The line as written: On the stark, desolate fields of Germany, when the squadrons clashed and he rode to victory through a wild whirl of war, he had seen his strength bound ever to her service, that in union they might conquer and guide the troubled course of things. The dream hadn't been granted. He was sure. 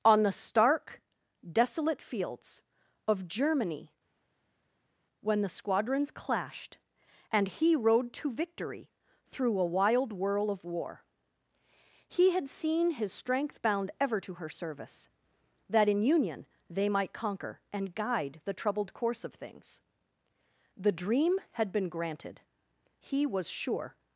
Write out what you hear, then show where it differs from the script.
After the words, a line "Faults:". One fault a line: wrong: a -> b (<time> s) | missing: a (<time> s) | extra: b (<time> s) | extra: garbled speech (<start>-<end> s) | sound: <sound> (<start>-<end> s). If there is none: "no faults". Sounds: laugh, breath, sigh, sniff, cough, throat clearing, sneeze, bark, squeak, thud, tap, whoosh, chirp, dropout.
On the stark, desolate fields of Germany, when the squadrons clashed and he rode to victory through a wild whirl of war, he had seen his strength bound ever to her service, that in union they might conquer and guide the troubled course of things. The dream had been granted. He was sure.
Faults:
wrong: hadn't -> had (21.5 s)